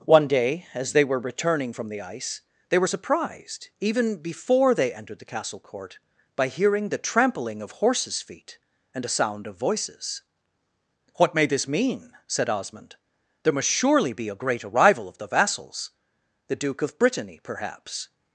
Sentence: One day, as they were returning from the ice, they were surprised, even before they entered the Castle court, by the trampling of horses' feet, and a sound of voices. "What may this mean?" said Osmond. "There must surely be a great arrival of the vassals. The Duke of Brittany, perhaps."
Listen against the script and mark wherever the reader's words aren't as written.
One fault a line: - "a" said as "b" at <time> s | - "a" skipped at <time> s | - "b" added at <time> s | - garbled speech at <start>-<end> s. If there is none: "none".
- "hearing" added at 6.5 s